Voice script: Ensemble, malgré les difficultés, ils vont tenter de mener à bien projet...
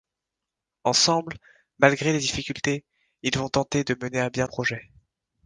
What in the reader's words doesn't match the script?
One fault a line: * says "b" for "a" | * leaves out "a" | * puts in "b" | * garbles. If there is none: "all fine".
all fine